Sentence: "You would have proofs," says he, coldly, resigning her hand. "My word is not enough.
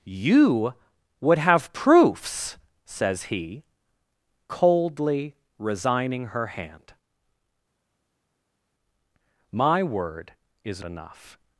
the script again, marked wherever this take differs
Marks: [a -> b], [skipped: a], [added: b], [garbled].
"You would have proofs," says he, coldly, resigning her hand. "My word is [skipped: not] enough.